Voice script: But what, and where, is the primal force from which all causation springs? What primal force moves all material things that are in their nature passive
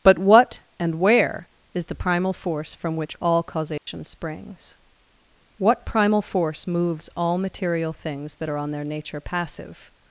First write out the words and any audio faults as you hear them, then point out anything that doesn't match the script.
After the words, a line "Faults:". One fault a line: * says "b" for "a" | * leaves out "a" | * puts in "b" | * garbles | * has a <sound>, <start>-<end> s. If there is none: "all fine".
But what, and where, is the primal force from which all causation springs? What primal force moves all material things that are on their nature passive
Faults:
* has a dropout, 3.8-3.9 s
* says "on" for "in"